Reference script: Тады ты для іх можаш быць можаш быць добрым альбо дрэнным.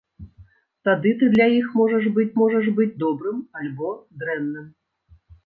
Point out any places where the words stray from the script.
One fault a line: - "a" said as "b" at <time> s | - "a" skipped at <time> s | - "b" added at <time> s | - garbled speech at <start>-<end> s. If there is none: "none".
none